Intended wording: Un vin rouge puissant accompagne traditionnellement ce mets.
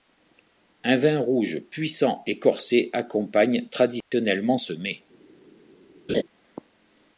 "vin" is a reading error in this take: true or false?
false